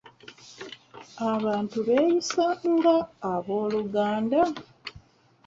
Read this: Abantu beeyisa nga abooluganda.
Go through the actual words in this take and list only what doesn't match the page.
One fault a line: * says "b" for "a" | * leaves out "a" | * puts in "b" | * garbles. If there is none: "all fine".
all fine